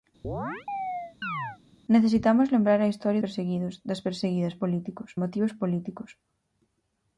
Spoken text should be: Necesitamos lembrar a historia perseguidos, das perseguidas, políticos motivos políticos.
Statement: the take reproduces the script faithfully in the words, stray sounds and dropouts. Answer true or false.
false